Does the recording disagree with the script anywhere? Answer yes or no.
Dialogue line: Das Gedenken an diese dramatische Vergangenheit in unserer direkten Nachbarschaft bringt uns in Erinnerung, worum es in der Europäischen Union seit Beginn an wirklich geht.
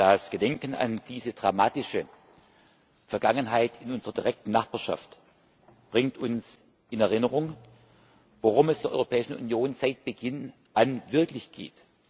yes